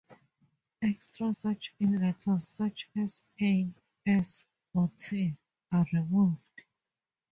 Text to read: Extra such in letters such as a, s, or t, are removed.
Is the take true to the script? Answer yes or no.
yes